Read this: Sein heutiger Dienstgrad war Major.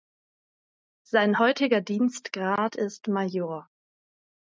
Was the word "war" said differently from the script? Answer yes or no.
yes